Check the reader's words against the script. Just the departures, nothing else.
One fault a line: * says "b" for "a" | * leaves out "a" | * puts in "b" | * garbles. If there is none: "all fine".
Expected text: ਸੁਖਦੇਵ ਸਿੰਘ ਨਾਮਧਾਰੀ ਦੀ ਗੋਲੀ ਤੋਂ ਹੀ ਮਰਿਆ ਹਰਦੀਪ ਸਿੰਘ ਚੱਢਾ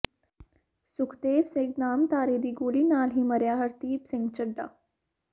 * says "ਨਾਲ" for "ਤੋਂ"